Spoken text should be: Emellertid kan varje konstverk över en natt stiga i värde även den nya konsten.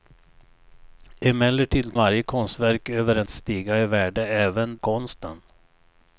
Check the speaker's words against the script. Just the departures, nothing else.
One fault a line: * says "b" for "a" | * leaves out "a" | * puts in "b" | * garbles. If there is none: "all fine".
* leaves out "kan"
* leaves out "natt"
* leaves out "den nya"